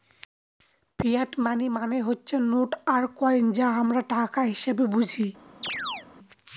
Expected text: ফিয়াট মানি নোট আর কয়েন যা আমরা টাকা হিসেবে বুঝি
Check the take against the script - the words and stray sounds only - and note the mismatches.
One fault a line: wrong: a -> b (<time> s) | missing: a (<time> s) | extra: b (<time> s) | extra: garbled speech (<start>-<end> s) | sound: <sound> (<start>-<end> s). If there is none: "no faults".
extra: মানে হচ্ছে (1.7 s)
sound: chirp (5.6-6.1 s)